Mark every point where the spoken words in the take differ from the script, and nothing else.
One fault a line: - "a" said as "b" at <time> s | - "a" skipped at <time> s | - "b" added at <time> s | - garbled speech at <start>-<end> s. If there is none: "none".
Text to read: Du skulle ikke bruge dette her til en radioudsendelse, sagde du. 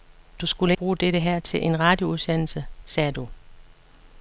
- "ikke" skipped at 0.7 s